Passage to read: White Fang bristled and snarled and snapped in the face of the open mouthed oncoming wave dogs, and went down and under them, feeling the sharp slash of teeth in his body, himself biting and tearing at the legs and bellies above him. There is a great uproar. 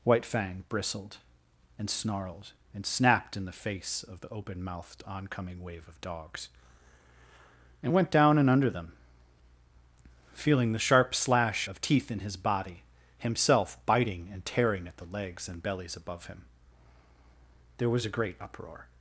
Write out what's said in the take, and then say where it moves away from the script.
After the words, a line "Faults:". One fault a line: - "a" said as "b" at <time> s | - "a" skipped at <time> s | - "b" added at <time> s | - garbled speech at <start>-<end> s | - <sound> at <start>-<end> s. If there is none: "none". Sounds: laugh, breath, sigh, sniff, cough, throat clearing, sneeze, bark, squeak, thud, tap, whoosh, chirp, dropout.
White Fang bristled and snarled and snapped in the face of the open mouthed oncoming wave of dogs, and went down and under them, feeling the sharp slash of teeth in his body, himself biting and tearing at the legs and bellies above him. There was a great uproar.
Faults:
- "of" added at 5.9 s
- "is" said as "was" at 17.9 s